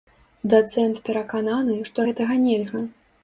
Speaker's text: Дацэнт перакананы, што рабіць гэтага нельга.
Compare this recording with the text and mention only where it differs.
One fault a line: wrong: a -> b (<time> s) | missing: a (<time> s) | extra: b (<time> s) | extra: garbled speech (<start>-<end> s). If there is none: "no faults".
missing: рабіць (2.1 s)